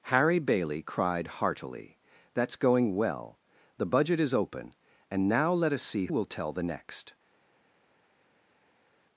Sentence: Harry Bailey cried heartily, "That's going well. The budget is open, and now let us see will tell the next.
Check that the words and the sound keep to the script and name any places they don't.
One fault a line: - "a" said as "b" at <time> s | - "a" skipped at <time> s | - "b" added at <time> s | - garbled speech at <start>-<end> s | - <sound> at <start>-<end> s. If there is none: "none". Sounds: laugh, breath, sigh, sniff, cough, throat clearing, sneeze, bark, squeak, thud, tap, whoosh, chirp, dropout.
none